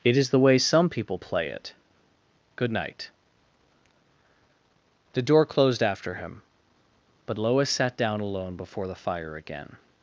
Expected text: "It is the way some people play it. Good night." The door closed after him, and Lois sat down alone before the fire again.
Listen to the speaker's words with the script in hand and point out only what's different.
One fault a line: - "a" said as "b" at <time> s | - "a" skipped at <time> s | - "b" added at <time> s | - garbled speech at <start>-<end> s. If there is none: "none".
- "and" said as "but" at 7.2 s